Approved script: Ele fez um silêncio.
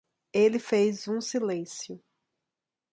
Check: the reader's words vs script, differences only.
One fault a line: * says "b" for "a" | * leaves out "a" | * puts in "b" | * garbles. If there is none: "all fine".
all fine